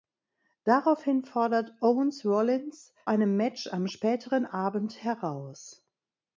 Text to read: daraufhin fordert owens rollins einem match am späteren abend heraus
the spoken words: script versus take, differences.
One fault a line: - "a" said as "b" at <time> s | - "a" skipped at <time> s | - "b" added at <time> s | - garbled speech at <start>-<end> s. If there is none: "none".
none